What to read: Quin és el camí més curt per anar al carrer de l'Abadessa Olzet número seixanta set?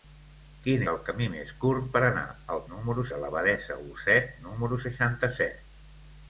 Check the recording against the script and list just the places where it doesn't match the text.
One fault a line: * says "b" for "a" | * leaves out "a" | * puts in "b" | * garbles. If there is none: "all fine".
* leaves out "és"
* says "número" for "carrer"